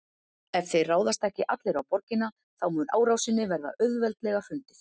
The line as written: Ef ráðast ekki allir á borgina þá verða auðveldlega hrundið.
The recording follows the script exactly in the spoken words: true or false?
false